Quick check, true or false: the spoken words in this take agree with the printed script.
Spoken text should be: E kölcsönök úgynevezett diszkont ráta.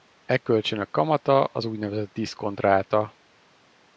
false